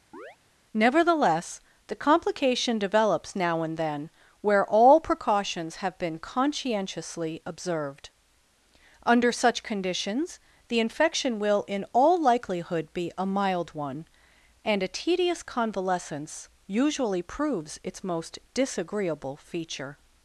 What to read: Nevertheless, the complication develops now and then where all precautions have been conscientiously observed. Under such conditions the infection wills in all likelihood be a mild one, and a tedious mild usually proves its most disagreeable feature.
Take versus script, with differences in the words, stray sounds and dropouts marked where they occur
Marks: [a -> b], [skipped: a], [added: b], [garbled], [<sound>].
[chirp] Nevertheless, the complication develops now and then where all precautions have been conscientiously observed. Under such conditions the infection [wills -> will] in all likelihood be a mild one, and a tedious [mild -> convalescence] usually proves its most disagreeable feature.